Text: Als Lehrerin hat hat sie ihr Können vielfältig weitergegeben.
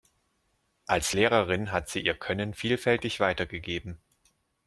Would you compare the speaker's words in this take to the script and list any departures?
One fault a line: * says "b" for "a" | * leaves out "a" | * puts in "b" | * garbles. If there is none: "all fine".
* leaves out "hat"